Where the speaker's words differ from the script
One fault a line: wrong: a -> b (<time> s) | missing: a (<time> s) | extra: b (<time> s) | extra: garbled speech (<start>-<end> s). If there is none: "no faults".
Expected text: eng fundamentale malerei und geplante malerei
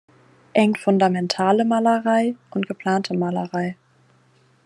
no faults